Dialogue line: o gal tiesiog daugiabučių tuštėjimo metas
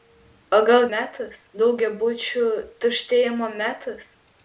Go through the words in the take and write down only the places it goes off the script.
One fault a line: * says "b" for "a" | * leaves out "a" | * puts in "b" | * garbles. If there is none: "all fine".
* says "metas" for "tiesiog"